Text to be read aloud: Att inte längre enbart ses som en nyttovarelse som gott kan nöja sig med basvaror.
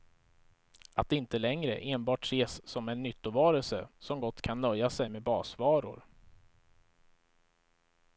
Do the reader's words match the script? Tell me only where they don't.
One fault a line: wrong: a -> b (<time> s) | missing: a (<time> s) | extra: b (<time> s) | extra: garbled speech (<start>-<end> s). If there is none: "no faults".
no faults